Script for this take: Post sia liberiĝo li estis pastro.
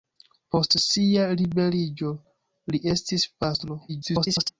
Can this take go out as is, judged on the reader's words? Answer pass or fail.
fail